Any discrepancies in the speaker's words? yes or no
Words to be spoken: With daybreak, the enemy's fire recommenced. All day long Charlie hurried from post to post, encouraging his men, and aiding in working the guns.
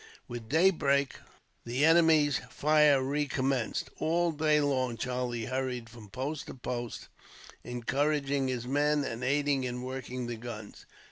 no